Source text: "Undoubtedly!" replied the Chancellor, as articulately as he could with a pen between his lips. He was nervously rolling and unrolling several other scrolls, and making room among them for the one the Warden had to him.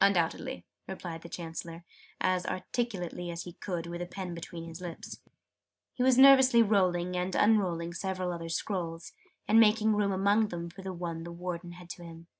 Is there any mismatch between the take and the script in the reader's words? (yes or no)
no